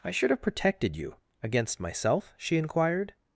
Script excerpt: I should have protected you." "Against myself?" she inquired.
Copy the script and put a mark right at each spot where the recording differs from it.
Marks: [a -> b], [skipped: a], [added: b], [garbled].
I should have protected you." "Against myself?" she inquired.